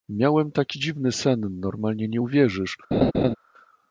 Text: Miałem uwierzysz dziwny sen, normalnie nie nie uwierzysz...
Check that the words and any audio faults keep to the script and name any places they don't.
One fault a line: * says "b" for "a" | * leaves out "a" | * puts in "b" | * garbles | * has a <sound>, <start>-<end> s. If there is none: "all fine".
* says "taki" for "uwierzysz"
* leaves out "nie"
* has a laugh, 2.9-3.4 s